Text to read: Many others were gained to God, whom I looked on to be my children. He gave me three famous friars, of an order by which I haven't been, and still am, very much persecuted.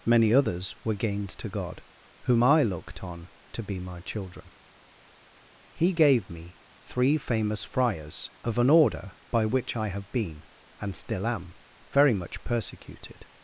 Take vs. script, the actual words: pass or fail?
fail